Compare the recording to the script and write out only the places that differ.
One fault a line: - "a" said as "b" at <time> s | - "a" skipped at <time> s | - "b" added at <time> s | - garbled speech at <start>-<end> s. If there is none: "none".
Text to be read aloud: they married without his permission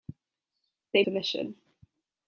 - "married without his" skipped at 1.0 s